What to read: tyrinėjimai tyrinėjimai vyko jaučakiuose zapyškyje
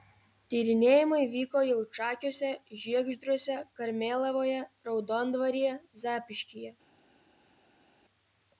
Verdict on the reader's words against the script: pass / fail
fail